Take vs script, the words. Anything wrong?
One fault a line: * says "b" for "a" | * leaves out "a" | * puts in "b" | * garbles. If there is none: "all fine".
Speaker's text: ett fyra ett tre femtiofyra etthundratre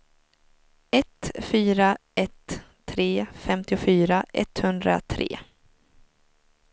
all fine